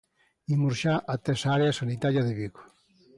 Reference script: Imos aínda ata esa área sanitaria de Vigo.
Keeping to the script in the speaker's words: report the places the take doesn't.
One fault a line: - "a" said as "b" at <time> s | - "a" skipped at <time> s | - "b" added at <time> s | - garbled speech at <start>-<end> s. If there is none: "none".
- "aínda" said as "xa" at 0.8 s